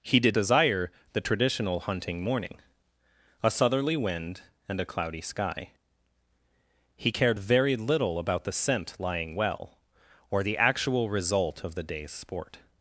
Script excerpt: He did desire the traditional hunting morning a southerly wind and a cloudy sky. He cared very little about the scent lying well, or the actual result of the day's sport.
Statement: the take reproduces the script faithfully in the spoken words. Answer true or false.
true